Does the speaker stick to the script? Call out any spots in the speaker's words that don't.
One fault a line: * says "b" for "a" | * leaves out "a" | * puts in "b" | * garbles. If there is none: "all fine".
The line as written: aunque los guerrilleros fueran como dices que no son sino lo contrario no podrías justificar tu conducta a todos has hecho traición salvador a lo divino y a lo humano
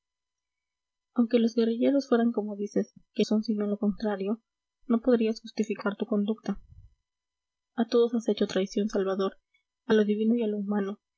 * leaves out "no"